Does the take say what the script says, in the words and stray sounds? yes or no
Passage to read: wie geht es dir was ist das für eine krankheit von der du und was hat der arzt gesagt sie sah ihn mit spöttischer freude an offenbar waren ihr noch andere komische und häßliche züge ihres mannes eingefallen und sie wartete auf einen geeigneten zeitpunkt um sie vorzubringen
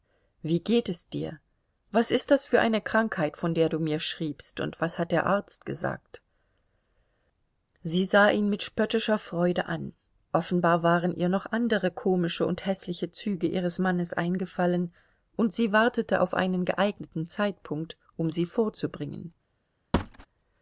no